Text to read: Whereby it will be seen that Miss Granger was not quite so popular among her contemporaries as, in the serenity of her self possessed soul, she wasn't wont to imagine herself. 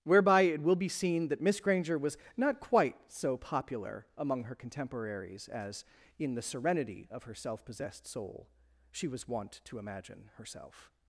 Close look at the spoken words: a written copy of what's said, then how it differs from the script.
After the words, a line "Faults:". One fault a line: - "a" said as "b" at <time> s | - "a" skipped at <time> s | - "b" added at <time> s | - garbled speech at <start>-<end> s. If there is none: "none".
Whereby it will be seen that Miss Granger was not quite so popular among her contemporaries as, in the serenity of her self possessed soul, she was wont to imagine herself.
Faults:
- "wasn't" said as "was" at 9.1 s